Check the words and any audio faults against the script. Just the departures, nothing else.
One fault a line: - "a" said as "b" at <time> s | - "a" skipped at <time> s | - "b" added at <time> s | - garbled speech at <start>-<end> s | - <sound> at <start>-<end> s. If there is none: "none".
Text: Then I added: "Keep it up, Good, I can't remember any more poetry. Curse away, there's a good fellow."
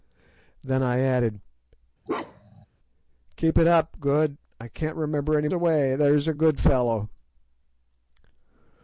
- bark at 2.1-2.7 s
- "more poetry Curse" skipped at 5.5 s